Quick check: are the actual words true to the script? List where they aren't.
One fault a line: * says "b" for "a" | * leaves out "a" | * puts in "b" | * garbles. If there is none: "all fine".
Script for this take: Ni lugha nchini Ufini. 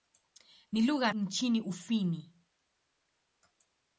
all fine